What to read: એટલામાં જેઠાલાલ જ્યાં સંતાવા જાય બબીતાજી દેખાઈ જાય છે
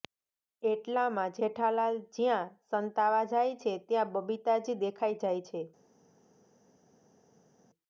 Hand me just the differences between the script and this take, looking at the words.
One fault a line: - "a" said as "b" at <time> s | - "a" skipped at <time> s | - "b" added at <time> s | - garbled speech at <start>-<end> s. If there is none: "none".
- "છે ત્યાં" added at 3.7 s